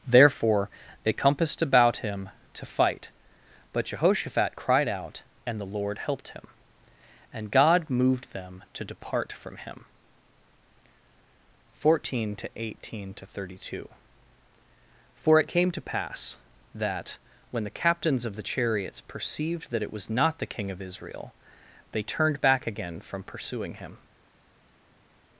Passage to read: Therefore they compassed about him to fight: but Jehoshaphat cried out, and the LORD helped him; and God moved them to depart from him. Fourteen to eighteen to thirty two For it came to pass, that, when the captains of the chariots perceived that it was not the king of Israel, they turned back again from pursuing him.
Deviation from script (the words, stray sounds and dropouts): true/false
false